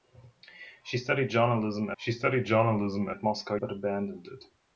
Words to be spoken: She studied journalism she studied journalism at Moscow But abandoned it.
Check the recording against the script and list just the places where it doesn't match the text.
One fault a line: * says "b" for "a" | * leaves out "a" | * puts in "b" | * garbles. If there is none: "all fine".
all fine